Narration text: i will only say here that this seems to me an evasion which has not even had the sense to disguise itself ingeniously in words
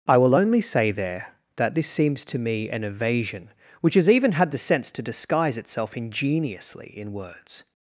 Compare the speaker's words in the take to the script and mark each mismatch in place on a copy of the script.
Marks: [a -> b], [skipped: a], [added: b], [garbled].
i will only say [here -> there] that this seems to me an evasion which has [skipped: not] even had the sense to disguise itself ingeniously in words